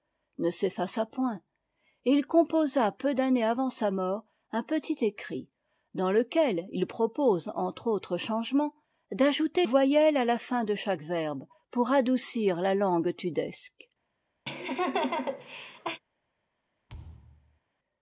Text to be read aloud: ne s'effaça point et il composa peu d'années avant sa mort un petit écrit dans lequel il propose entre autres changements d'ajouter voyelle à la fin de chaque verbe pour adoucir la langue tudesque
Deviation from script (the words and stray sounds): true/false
true